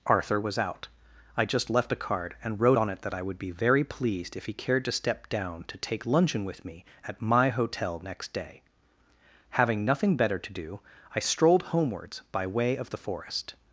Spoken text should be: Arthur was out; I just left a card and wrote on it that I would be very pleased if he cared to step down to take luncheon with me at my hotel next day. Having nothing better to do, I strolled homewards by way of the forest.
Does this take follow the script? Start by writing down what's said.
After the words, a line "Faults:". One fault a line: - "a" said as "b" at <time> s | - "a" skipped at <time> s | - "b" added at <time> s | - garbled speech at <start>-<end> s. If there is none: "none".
Arthur was out; I just left a card and wrote on it that I would be very pleased if he cared to step down to take luncheon with me at my hotel next day. Having nothing better to do, I strolled homewards by way of the forest.
Faults:
none